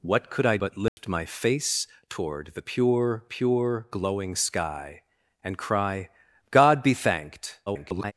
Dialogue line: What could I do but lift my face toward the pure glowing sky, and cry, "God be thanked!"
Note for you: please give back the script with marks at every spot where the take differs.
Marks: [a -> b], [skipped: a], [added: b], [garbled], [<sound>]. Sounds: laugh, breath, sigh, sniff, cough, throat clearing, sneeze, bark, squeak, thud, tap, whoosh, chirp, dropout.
What could I [skipped: do] but lift [dropout] my face toward the pure [added: pure] glowing sky, and cry, "God be thanked!" [garbled]